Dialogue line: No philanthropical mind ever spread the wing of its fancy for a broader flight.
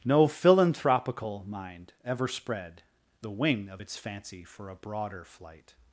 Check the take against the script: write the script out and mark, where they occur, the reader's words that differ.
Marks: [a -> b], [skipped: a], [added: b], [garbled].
No philanthropical mind ever spread the wing of its fancy for a broader flight.